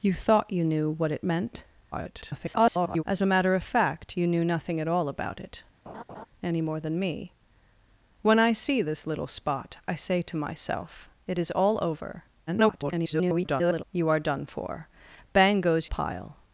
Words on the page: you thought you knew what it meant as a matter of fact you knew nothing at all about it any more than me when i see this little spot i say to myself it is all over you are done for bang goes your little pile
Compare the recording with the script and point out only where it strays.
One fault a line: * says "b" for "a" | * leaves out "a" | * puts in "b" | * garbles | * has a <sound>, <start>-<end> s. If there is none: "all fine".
* garbles
* has a laugh, 5.9-6.3 s
* garbles
* leaves out "your little"